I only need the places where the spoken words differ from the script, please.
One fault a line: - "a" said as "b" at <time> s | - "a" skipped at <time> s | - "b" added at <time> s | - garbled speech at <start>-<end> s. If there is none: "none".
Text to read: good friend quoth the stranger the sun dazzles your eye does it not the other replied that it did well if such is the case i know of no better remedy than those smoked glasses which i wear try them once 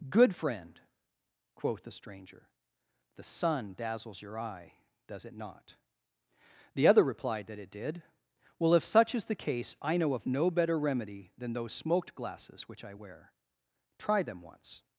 none